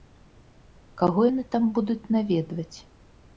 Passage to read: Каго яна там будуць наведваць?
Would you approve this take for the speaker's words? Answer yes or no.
no